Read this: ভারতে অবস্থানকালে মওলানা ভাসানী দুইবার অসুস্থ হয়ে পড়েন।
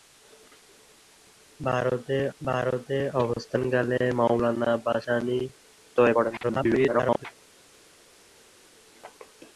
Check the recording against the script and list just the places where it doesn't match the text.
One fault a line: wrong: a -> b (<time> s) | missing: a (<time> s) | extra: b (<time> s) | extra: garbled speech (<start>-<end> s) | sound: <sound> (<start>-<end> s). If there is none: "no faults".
extra: ভারতে (2.4 s)
missing: দুইবার অসুস্থ (5.4 s)
extra: garbled speech (6.4-7.3 s)